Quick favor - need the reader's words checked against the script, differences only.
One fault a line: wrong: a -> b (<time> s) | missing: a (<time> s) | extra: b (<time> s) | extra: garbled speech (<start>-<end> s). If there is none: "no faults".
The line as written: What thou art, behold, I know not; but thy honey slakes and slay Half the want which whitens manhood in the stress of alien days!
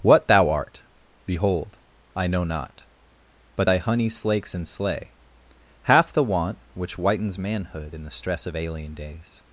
no faults